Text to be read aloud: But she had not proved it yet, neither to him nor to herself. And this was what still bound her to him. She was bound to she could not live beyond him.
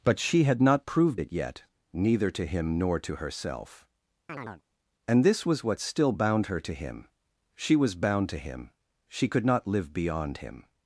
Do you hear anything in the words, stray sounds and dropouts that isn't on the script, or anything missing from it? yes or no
yes